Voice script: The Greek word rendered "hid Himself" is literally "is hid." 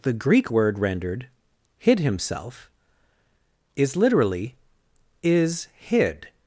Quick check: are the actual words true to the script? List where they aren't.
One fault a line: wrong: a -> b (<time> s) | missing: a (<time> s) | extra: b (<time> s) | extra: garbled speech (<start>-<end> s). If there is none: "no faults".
no faults